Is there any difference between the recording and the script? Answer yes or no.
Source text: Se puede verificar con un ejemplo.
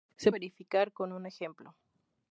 yes